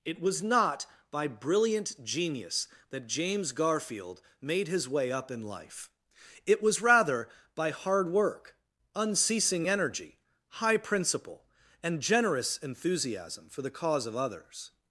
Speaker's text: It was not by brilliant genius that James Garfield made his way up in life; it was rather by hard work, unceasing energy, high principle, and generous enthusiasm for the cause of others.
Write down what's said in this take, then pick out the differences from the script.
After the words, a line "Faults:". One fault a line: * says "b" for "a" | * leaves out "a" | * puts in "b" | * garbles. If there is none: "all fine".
It was not by brilliant genius that James Garfield made his way up in life; it was rather by hard work, unceasing energy, high principle, and generous enthusiasm for the cause of others.
Faults:
all fine